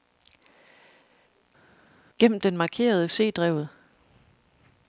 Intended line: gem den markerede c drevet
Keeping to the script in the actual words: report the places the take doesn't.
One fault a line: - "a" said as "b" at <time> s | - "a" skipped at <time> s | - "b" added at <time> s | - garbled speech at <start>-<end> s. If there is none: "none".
none